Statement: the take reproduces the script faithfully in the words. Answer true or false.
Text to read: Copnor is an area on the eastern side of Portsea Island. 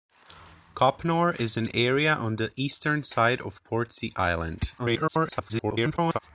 false